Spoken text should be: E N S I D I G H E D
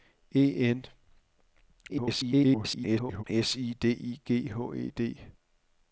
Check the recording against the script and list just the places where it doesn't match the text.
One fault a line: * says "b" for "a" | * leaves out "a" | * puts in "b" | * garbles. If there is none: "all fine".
* garbles